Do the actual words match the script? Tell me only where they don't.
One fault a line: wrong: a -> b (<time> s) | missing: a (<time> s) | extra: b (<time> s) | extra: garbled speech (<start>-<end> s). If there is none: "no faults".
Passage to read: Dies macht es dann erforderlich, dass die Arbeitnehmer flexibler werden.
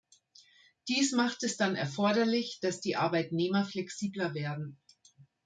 no faults